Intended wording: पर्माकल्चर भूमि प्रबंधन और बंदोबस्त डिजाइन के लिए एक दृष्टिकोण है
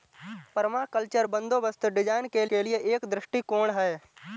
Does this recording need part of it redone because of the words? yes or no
yes